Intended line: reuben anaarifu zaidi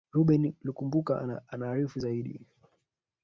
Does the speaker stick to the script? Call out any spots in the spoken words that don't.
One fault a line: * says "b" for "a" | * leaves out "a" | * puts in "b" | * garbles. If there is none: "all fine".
* puts in "lukumbuka"